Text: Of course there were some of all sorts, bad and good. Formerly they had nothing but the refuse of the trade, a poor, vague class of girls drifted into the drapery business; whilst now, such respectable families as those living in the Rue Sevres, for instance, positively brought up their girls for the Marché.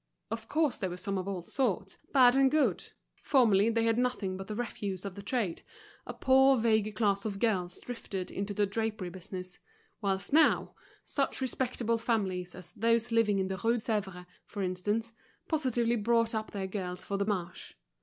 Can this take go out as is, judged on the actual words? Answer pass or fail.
pass